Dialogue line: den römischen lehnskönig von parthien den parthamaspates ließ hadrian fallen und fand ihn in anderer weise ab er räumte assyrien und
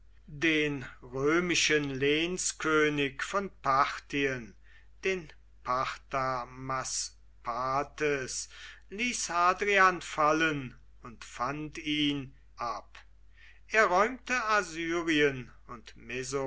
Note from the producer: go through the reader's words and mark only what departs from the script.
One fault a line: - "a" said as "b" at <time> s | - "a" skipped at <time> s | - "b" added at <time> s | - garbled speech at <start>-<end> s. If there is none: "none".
- "in anderer weise" skipped at 12.3 s